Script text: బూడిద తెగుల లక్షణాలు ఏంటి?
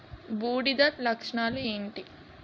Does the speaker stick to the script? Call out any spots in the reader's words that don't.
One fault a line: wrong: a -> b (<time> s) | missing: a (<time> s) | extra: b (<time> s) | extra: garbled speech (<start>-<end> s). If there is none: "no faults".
missing: తెగుల (0.8 s)